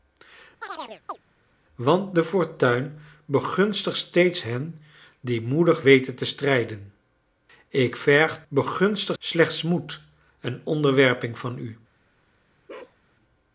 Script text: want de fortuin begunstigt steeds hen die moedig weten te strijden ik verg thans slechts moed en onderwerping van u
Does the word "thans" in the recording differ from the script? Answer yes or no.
yes